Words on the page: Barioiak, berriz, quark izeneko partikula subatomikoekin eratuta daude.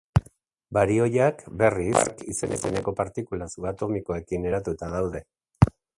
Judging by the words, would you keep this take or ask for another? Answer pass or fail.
pass